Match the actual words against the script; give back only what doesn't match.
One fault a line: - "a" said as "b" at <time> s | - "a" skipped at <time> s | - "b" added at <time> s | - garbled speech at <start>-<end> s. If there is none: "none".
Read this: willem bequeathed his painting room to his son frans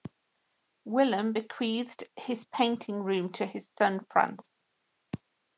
none